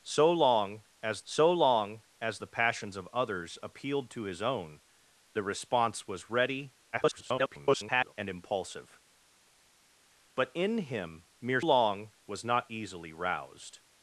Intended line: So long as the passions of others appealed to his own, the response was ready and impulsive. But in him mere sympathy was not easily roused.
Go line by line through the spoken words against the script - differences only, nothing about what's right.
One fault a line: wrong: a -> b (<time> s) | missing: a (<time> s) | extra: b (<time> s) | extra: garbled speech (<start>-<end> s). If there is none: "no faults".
extra: so long as (1.2 s)
extra: garbled speech (6.9-8.1 s)
wrong: sympathy -> long (11.6 s)